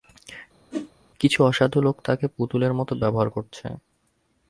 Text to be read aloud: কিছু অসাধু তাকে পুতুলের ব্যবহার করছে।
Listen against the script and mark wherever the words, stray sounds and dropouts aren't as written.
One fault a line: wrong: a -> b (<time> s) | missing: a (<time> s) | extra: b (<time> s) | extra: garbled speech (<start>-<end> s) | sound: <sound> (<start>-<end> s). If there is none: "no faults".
sound: whoosh (0.7-0.9 s)
extra: লোক (1.8 s)
extra: মতো (2.8 s)